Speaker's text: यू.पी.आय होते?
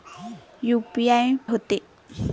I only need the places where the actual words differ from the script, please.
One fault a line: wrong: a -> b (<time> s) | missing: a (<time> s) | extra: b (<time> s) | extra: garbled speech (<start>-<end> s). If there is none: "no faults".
no faults